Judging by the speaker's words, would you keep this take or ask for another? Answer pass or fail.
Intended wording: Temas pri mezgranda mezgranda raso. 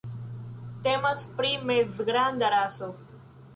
fail